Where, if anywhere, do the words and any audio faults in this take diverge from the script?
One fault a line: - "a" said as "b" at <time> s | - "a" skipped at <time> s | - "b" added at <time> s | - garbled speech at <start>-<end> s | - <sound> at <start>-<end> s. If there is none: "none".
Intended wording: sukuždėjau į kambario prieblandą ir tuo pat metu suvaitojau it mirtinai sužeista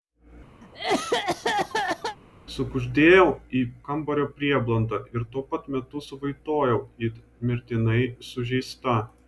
- cough at 0.6-2.2 s